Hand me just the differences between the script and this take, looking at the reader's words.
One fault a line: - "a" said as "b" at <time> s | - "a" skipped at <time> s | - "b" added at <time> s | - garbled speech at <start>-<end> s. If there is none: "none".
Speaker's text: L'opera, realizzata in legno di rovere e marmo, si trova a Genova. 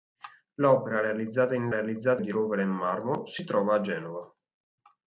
- "legno" said as "realizzata" at 1.7 s